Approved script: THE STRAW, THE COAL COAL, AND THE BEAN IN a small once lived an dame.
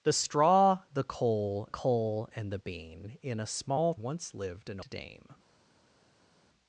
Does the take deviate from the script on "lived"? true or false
false